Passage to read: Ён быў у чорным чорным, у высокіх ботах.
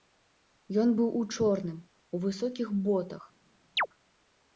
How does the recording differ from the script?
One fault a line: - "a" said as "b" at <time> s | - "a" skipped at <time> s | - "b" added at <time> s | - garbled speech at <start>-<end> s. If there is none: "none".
- "чорным" skipped at 1.8 s